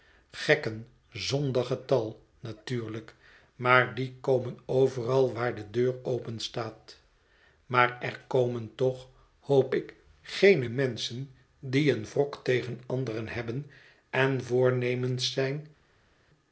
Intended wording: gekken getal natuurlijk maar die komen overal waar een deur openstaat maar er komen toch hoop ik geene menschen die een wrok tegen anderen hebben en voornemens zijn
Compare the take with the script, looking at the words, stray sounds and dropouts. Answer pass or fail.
fail